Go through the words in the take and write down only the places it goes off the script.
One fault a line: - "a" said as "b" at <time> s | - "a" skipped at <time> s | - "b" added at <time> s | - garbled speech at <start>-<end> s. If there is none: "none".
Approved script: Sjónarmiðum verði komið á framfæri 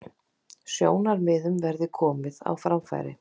none